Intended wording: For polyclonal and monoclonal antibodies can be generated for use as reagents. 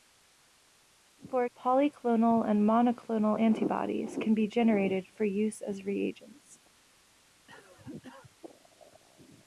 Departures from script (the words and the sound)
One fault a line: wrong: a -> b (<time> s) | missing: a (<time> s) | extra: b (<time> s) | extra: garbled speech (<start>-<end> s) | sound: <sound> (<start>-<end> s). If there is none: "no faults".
sound: cough (7.5-8.4 s)